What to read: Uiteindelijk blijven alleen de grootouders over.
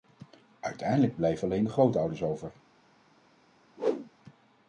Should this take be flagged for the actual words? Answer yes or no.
no